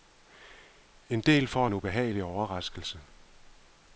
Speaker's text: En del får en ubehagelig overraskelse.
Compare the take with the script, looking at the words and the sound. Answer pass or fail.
pass